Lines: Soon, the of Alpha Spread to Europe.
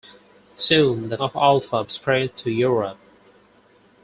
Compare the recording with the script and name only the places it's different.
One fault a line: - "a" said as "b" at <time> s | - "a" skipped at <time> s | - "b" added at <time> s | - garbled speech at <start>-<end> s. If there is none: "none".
none